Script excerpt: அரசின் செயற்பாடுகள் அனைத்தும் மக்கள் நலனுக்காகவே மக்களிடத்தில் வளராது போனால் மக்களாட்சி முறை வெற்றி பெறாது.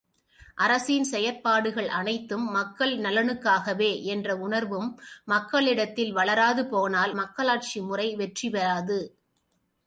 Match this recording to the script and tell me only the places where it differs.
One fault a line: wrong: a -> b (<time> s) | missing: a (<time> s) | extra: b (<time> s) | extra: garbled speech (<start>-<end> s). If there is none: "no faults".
extra: என்ற உணர்வும் (4.0 s)